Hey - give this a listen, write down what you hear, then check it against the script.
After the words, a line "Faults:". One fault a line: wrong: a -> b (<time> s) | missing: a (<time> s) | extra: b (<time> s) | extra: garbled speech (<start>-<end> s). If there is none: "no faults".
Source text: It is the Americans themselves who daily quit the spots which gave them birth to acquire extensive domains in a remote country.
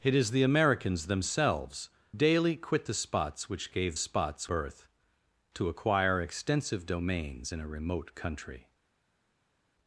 It is the Americans themselves daily quit the spots which gave spots birth to acquire extensive domains in a remote country.
Faults:
missing: who (1.9 s)
wrong: them -> spots (4.0 s)